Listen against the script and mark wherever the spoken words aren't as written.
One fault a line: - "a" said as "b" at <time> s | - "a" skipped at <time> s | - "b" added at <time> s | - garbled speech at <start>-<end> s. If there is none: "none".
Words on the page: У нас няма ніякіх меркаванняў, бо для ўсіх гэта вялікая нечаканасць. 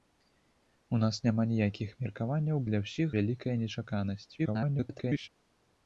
- "бо" skipped at 2.6 s
- "гэта" skipped at 3.1 s
- garbled speech at 4.4-5.3 s